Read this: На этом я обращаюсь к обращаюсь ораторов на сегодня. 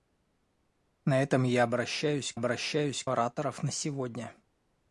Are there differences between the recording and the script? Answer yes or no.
no